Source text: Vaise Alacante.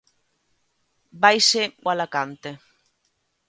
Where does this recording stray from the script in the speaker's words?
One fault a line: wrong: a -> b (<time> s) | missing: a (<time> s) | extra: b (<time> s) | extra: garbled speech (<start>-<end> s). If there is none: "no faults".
no faults